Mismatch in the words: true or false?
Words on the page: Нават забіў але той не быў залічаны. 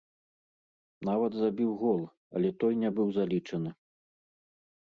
true